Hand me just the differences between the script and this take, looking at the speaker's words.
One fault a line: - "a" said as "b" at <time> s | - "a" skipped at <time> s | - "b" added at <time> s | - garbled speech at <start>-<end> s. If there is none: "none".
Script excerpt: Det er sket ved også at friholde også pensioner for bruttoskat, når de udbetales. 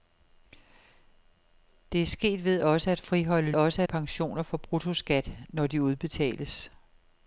none